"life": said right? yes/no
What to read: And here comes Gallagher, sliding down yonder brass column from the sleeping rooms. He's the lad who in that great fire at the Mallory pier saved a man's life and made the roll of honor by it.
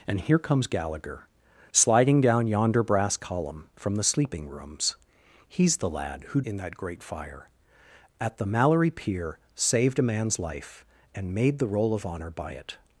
yes